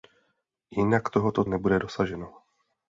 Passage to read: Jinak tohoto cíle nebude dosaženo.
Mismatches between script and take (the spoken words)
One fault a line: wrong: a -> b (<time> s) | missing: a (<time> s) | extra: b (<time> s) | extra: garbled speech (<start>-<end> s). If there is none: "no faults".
missing: cíle (1.4 s)